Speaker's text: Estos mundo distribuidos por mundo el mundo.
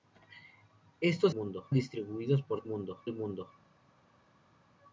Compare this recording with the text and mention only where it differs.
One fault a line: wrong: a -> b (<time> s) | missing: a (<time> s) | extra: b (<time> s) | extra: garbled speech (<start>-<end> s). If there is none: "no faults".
no faults